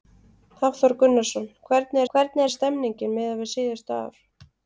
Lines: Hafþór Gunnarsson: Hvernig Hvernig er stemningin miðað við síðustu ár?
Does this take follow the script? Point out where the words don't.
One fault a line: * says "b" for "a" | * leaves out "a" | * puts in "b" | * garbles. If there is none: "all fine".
all fine